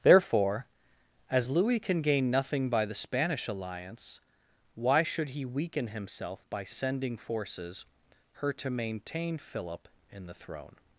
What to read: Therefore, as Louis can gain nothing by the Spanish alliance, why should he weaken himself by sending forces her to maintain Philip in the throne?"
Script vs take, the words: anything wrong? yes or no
no